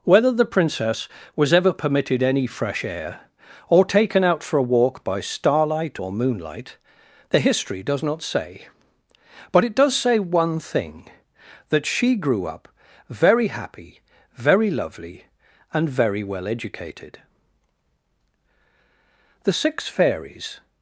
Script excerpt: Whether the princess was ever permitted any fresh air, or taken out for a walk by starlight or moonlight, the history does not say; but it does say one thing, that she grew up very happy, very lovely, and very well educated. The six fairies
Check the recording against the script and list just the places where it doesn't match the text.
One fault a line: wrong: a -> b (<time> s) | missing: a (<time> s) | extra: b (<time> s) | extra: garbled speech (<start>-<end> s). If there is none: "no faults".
no faults